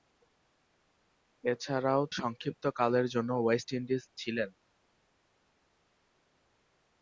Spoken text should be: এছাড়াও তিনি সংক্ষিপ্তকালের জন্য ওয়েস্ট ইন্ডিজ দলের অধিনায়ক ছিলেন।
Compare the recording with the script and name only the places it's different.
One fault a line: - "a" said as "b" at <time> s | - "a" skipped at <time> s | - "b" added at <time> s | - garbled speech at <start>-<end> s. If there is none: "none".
- "তিনি" skipped at 2.0 s
- "দলের অধিনায়ক" skipped at 4.0 s